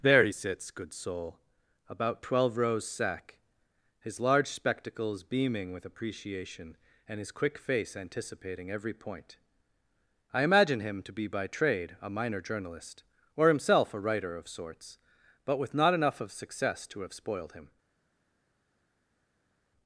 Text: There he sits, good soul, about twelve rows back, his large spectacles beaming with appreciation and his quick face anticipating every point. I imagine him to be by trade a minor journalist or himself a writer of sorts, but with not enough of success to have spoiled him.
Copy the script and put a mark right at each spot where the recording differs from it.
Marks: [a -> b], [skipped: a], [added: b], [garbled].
There he sits, good soul, about twelve rows [back, -> sack] his large spectacles beaming with appreciation and his quick face anticipating every point. I imagine him to be by trade a minor journalist or himself a writer of sorts, but with not enough of success to have spoiled him.